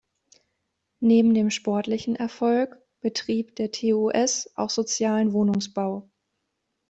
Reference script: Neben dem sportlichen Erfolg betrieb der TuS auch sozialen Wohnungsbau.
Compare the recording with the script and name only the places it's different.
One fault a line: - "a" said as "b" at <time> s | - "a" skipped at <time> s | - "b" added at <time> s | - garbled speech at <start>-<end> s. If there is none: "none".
none